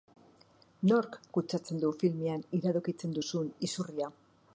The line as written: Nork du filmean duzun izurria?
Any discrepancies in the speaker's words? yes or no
yes